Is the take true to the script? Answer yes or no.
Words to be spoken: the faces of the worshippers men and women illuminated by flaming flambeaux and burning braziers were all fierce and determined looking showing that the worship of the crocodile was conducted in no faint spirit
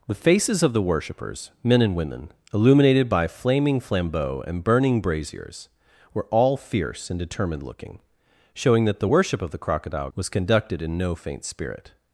yes